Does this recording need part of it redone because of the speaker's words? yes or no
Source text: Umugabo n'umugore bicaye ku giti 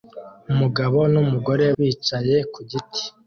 no